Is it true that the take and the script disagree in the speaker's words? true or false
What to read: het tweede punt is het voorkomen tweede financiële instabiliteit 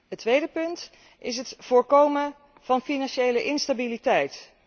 true